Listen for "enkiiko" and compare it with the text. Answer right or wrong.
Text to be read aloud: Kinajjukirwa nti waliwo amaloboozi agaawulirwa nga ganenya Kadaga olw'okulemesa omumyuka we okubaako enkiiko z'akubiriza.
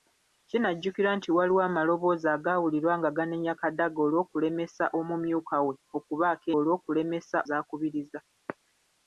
wrong